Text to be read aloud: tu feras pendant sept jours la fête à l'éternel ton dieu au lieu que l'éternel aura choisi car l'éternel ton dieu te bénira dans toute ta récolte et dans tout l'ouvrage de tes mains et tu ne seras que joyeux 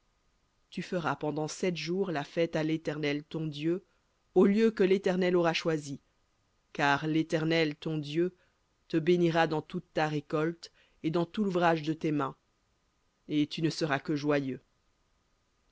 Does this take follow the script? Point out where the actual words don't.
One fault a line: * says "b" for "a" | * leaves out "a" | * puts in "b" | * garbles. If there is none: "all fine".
all fine